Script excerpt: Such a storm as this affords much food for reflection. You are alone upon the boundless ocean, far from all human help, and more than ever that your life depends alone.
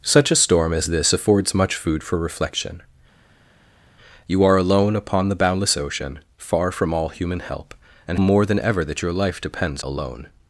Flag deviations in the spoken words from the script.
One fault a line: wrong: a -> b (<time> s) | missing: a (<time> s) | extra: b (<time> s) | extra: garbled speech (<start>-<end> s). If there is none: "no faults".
no faults